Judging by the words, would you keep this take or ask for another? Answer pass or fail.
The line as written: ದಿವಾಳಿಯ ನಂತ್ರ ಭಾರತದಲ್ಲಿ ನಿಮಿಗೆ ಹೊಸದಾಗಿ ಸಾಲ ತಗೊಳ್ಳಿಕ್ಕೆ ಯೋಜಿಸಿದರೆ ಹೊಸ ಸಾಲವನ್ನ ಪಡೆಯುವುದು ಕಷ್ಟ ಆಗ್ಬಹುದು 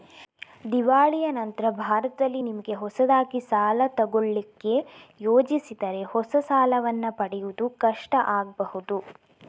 pass